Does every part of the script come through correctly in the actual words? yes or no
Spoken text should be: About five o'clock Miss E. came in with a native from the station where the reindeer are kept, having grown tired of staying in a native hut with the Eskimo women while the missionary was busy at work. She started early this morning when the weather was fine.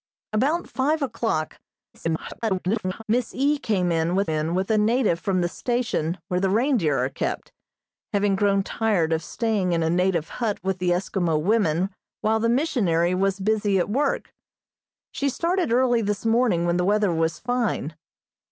no